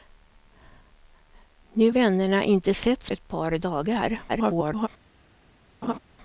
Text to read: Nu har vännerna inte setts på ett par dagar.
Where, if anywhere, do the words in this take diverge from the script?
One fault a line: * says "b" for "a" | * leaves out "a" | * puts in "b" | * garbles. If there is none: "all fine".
* leaves out "har"
* leaves out "på"
* garbles